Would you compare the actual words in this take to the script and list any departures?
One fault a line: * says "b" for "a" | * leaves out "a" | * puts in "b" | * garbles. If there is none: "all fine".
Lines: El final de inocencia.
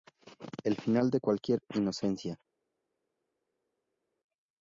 * puts in "cualquier"